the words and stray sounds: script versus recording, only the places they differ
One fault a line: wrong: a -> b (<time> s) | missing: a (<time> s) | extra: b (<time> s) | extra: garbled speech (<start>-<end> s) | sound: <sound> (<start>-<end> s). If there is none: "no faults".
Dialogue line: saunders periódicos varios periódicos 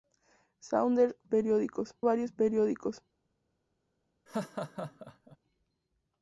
sound: laugh (4.3-5.4 s)